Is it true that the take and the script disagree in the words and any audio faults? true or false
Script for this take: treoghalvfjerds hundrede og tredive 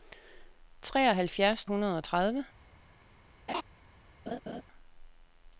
true